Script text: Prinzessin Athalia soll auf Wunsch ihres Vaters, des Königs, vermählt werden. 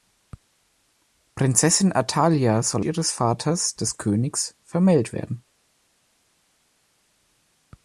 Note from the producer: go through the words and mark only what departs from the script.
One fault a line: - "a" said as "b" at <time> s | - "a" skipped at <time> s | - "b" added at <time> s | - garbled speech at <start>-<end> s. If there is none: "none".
- "auf Wunsch" skipped at 2.9 s